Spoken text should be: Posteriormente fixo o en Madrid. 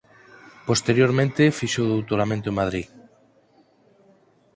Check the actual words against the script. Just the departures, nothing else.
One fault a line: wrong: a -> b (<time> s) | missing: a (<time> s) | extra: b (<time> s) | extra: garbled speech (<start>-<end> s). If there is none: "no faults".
extra: doutoramento (1.9 s)